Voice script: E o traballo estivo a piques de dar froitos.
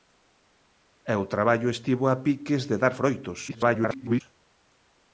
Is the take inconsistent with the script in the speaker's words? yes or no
yes